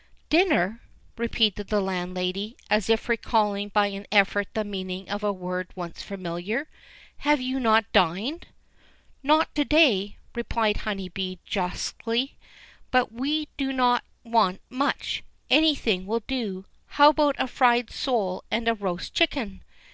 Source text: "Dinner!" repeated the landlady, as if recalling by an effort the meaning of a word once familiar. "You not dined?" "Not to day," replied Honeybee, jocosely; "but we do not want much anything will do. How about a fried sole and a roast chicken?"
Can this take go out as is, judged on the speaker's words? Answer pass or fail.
fail